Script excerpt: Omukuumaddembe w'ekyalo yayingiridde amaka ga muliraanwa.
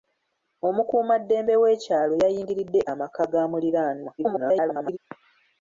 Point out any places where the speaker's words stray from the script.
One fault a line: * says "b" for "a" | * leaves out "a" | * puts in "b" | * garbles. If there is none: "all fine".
* garbles